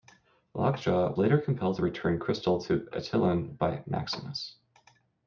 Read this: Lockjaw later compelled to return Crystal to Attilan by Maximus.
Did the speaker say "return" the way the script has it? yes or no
yes